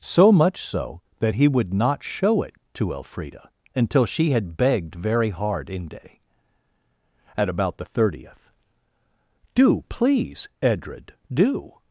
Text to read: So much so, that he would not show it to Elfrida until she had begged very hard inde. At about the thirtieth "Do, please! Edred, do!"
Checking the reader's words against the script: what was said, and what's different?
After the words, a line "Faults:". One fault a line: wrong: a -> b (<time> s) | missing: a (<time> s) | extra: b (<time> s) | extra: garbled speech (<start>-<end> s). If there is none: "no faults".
So much so, that he would not show it to Elfrida until she had begged very hard inde. At about the thirtieth "Do, please! Edred, do!"
Faults:
no faults